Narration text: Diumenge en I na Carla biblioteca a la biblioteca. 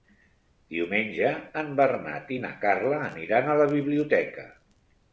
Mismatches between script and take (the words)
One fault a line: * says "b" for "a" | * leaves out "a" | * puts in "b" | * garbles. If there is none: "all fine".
* puts in "Bernat"
* says "aniran" for "biblioteca"